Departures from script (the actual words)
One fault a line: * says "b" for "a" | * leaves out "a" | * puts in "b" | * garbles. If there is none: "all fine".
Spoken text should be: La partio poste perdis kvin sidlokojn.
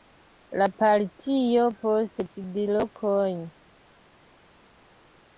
* leaves out "perdis kvin"